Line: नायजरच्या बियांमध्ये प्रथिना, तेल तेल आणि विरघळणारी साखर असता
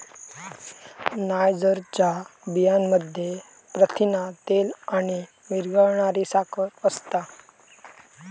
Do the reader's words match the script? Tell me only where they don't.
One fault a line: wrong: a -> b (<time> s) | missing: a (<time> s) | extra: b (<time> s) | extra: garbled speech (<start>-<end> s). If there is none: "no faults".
missing: तेल (4.7 s)